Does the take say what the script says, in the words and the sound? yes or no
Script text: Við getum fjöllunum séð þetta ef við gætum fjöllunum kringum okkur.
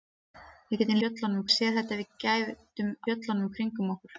yes